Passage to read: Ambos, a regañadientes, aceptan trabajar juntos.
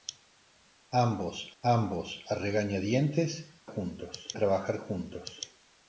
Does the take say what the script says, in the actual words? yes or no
no